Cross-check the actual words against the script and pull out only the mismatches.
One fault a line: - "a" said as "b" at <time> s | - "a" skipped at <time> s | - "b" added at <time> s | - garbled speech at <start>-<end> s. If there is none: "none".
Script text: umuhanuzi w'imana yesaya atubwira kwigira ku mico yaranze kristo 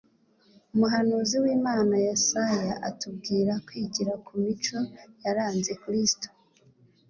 none